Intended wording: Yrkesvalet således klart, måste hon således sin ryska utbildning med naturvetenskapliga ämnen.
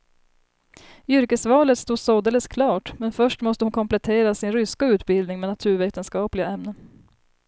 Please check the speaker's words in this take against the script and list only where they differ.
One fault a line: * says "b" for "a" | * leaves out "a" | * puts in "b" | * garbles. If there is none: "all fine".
* puts in "stod"
* puts in "men först"
* says "komplettera" for "således"